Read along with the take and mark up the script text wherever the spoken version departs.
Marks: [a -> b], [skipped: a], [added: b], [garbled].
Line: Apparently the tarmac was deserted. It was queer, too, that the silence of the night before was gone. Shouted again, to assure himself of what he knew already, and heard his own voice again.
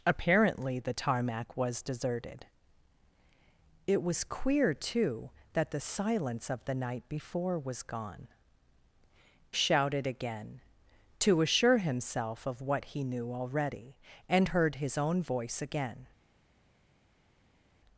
Apparently the tarmac was deserted. It was queer, too, that the silence of the night before was gone. Shouted again, to assure himself of what he knew already, and heard his own voice again.